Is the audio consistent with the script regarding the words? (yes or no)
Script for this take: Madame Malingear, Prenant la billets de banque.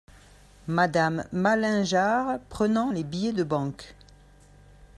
no